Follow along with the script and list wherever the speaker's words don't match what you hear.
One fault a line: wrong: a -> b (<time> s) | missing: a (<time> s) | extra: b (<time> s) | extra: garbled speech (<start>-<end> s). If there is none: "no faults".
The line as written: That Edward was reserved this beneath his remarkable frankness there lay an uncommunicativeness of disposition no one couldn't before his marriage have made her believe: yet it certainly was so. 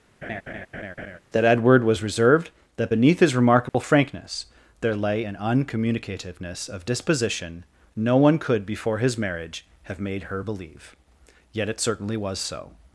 wrong: this -> that (2.8 s)
wrong: couldn't -> could (8.4 s)